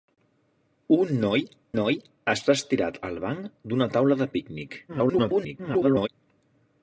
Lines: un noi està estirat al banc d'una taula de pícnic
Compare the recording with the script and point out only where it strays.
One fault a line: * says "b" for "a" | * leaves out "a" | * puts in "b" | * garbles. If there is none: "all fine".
* puts in "noi"
* garbles